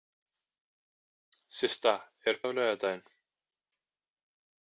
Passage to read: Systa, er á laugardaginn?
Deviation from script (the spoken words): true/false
false